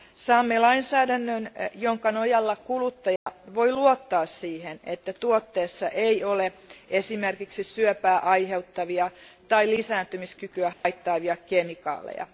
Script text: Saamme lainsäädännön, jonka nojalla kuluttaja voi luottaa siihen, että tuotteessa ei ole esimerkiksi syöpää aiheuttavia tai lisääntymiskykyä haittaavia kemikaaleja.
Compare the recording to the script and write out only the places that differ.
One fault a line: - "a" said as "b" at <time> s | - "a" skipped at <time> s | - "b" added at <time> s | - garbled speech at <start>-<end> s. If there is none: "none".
none